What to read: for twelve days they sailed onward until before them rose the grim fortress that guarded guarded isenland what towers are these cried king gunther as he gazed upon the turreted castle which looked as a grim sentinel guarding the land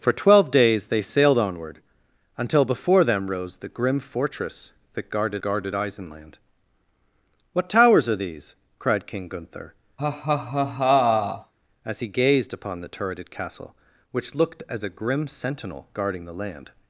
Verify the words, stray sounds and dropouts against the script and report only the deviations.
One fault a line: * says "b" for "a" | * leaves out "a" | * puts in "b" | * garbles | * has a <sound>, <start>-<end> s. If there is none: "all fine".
* has a laugh, 10.0-11.5 s